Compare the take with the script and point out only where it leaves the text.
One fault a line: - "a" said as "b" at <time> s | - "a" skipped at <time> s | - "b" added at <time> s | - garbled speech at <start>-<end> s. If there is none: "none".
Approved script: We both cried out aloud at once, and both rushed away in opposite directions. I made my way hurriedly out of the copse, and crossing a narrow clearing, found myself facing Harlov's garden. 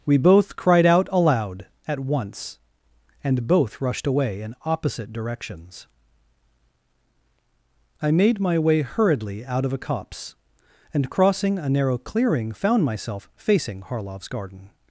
- "the" said as "a" at 9.7 s